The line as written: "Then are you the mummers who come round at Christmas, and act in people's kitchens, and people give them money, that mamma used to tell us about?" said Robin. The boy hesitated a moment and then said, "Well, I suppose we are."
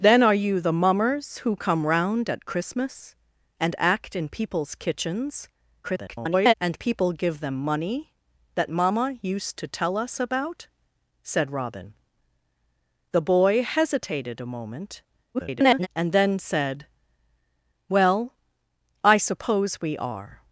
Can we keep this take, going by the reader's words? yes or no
no